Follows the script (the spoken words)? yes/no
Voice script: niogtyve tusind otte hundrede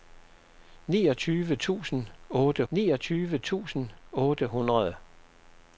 no